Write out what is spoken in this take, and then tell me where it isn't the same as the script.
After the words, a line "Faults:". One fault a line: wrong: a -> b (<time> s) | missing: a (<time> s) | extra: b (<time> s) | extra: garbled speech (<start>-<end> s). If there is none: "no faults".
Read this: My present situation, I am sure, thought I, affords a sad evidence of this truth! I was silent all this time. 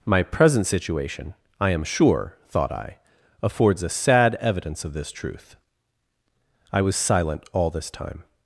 My present situation, I am sure, thought I, affords a sad evidence of this truth! I was silent all this time.
Faults:
no faults